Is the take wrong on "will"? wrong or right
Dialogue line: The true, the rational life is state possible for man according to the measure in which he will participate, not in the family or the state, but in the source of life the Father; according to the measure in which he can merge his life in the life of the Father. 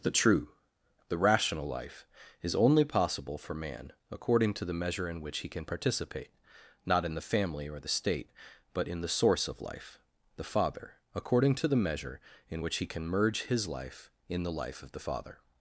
wrong